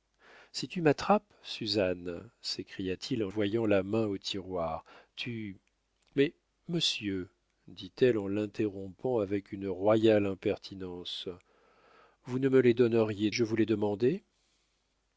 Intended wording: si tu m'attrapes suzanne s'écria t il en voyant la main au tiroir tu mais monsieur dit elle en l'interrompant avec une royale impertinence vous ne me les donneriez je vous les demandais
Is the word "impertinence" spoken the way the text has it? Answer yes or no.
yes